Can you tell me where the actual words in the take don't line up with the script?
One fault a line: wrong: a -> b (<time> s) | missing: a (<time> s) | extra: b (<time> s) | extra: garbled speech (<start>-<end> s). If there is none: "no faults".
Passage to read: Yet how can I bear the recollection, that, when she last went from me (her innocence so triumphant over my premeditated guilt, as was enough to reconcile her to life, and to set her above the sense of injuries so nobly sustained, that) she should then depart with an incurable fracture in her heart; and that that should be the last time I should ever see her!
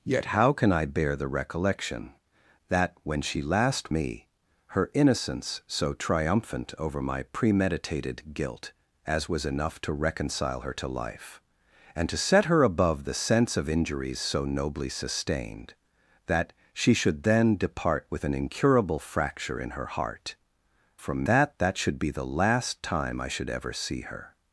missing: went from (3.9 s)
wrong: and -> from (21.0 s)